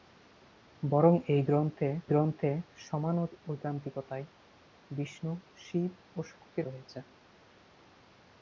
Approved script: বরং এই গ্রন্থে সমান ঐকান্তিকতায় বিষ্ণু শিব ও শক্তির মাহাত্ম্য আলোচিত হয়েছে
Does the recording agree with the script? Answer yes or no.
no